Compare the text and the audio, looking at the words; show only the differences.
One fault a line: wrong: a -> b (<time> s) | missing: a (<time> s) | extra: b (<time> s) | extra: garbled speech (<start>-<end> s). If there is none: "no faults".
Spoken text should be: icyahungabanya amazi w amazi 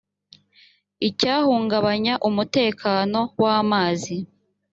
wrong: amazi -> umutekano (2.3 s)